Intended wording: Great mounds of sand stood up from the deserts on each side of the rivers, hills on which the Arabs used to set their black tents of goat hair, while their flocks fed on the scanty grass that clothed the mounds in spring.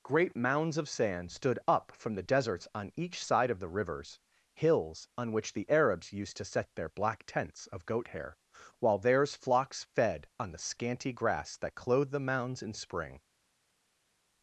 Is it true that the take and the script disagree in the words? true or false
true